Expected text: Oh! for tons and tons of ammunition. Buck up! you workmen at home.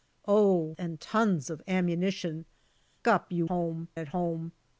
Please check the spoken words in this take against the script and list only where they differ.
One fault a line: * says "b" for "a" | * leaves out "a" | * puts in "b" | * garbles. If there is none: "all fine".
* leaves out "for tons"
* leaves out "Buck"
* says "home" for "workmen"